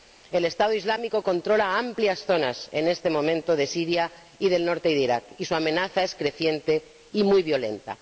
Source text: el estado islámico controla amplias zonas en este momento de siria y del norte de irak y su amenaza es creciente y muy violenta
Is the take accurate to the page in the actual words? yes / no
yes